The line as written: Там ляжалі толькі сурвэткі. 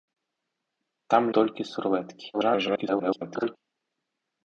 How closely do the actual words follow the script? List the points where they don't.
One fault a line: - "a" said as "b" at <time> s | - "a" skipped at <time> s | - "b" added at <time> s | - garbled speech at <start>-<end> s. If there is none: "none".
- "ляжалі" skipped at 1.2 s
- garbled speech at 2.3-3.6 s